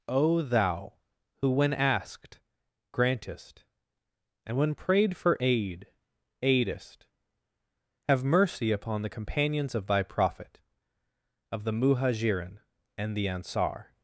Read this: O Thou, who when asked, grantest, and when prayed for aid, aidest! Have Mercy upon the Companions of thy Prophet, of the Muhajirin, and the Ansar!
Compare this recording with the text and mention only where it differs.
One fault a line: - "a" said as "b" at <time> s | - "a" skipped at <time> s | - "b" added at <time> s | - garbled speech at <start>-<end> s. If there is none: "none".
none